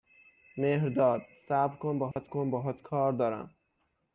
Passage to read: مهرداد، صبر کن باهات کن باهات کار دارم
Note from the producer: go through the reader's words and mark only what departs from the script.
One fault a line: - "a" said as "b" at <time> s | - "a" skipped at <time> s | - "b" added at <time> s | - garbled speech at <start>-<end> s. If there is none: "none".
none